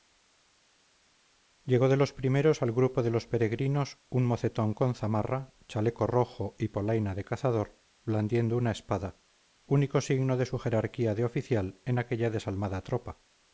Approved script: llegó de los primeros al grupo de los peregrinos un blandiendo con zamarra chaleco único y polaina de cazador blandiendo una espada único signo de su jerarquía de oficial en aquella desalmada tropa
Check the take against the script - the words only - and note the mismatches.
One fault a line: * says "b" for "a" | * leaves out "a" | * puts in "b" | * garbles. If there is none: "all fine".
* says "mocetón" for "blandiendo"
* says "rojo" for "único"